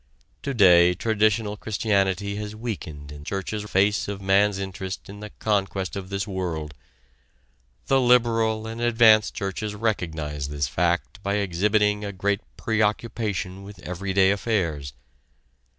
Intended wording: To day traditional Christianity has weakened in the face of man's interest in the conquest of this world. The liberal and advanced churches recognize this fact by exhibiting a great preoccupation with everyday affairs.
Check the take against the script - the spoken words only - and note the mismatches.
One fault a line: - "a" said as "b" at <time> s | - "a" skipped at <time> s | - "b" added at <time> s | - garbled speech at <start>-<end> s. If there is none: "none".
- "the" said as "churches" at 3.2 s